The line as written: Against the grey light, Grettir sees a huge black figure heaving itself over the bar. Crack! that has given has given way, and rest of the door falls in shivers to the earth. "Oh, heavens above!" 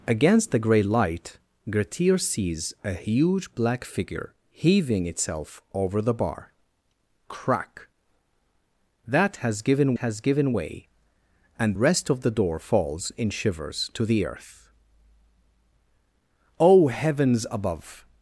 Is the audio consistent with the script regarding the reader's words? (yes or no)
yes